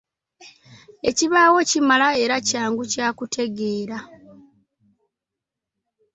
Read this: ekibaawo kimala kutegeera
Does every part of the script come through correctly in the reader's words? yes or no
no